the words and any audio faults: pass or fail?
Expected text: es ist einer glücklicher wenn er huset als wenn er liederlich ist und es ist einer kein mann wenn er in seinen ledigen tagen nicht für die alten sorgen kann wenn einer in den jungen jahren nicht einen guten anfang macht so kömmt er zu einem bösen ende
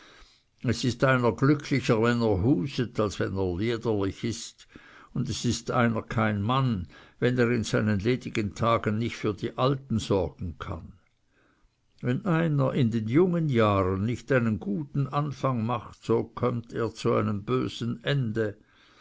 pass